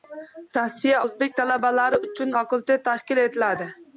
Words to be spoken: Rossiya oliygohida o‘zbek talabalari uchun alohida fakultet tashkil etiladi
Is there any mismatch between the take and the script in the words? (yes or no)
yes